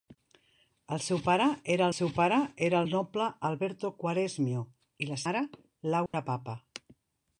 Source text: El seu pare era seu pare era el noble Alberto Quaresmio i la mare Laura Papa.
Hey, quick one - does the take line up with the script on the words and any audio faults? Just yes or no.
no